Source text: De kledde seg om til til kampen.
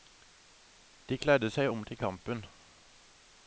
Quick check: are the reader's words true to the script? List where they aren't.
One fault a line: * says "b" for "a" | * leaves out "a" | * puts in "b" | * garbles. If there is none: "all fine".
* leaves out "til"